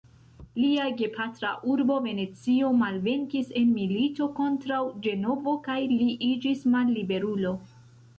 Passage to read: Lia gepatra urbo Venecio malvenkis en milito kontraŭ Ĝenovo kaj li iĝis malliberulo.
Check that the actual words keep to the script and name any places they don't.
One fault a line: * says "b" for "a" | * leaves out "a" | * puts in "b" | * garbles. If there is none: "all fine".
all fine